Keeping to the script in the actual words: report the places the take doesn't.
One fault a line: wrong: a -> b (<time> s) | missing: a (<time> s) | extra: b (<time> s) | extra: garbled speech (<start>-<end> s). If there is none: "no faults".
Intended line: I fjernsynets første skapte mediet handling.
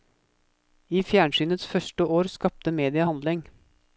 extra: år (2.2 s)